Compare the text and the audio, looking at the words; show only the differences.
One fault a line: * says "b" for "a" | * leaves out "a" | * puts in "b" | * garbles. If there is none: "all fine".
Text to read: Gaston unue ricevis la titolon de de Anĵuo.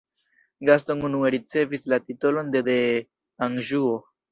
all fine